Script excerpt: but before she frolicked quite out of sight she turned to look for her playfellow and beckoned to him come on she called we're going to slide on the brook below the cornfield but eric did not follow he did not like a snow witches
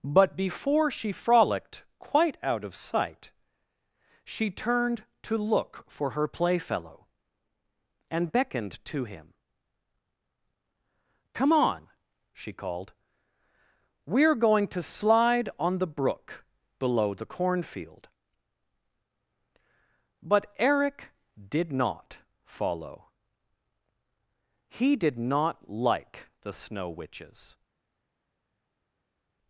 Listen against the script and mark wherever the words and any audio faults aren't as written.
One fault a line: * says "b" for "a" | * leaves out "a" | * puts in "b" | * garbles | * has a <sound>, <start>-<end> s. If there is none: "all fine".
* says "the" for "a"